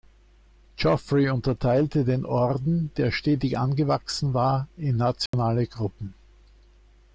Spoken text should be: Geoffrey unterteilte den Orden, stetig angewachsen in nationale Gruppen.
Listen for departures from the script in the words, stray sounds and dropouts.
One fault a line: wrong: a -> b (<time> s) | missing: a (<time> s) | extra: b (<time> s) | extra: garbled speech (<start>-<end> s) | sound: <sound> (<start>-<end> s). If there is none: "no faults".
extra: der (3.0 s)
extra: war (4.3 s)
sound: dropout (5.3-5.3 s)